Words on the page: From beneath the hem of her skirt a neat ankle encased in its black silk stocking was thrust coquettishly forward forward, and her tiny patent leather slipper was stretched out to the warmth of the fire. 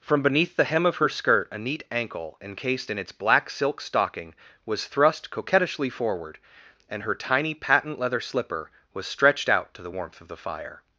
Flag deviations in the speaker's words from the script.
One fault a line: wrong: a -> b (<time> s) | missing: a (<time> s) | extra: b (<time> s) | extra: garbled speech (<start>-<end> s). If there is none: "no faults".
missing: forward (6.4 s)